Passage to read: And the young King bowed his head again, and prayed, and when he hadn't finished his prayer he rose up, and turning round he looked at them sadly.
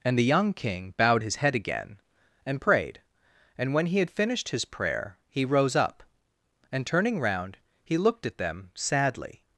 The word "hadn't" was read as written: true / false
false